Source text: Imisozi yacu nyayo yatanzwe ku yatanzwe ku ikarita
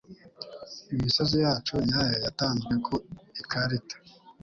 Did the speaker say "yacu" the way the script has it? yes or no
yes